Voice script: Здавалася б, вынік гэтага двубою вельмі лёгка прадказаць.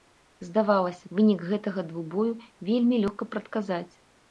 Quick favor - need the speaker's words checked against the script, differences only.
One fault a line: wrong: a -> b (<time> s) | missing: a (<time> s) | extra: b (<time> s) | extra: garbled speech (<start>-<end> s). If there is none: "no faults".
missing: б (1.1 s)